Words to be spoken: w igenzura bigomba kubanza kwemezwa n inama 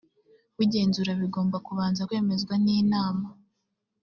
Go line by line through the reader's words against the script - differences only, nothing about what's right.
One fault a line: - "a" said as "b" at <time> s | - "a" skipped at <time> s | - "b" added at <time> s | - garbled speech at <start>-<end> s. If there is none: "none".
none